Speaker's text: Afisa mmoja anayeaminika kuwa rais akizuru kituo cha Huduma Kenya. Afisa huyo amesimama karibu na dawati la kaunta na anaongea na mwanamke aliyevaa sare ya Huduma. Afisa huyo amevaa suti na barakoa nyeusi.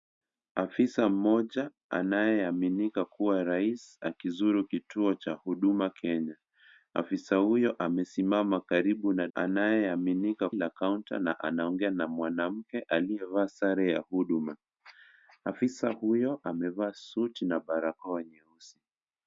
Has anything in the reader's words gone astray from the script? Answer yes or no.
yes